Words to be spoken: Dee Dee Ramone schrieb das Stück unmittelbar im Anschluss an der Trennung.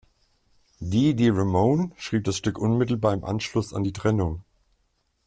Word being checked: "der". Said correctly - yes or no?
no